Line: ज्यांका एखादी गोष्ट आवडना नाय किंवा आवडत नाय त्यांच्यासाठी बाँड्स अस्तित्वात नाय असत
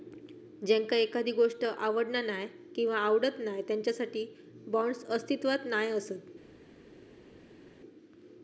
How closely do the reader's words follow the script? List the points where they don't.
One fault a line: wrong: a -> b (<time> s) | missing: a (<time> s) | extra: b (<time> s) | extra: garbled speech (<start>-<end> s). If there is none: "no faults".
no faults